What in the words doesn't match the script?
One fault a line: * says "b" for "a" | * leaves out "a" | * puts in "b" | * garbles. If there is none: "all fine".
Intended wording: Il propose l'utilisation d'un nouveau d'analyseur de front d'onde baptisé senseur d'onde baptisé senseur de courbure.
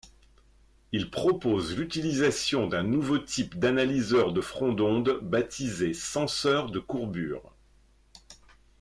* puts in "type"
* leaves out "d'onde baptisé senseur"